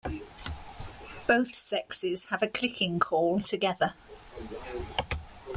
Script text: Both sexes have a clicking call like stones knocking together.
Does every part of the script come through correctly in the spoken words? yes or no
no